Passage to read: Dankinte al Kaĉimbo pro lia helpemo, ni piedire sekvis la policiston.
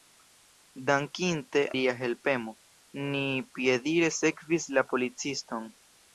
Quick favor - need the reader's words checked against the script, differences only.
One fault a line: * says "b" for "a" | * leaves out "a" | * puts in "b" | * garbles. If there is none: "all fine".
* leaves out "al Kaĉimbo pro"